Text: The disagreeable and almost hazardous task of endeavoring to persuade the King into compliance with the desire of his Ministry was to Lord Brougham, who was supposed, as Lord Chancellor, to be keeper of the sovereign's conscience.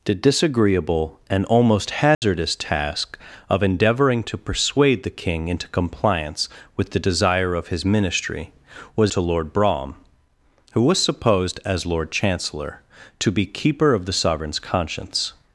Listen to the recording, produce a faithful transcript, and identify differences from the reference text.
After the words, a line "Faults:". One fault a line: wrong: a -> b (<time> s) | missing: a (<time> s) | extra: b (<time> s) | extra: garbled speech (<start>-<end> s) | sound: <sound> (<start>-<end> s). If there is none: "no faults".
The disagreeable and almost hazardous task of endeavoring to persuade the King into compliance with the desire of his Ministry was to Lord Brougham, who was supposed, as Lord Chancellor, to be keeper of the sovereign's conscience.
Faults:
sound: dropout (2.1-2.2 s)